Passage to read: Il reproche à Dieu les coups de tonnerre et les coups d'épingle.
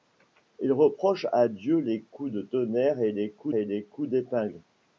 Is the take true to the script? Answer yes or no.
no